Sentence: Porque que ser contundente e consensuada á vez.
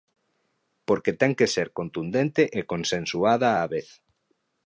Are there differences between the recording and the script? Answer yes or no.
yes